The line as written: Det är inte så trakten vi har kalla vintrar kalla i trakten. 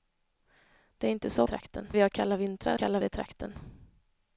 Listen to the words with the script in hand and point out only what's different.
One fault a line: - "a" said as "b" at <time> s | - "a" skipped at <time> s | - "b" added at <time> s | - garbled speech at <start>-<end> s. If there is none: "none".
none